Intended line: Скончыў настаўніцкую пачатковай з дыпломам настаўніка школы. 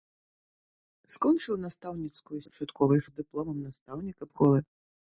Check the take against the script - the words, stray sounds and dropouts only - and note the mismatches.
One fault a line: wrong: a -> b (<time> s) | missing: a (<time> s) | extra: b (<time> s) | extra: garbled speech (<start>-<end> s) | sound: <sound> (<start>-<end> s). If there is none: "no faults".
no faults